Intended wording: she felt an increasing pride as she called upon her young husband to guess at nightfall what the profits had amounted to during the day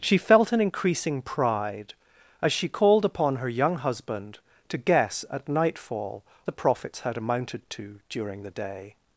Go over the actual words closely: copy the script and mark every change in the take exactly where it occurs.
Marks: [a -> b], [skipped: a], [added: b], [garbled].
she felt an increasing pride as she called upon her young husband to guess at nightfall [skipped: what] the profits had amounted to during the day